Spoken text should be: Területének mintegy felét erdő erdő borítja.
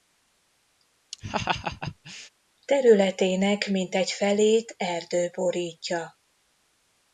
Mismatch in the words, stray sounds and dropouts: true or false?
true